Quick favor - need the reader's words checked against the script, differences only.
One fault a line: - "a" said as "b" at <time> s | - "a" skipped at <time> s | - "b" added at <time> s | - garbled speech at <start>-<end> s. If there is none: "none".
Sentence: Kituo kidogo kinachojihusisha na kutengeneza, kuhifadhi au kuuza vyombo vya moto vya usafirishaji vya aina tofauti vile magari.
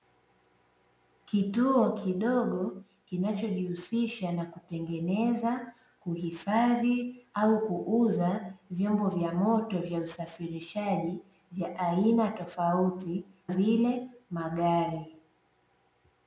none